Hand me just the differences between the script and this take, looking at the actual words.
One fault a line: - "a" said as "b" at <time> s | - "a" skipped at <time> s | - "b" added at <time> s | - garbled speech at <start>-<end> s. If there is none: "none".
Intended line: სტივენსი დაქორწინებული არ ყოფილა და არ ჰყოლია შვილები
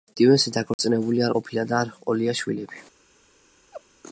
none